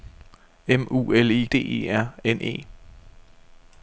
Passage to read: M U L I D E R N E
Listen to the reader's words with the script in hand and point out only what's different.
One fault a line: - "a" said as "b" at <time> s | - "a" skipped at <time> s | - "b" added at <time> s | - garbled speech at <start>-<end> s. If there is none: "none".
none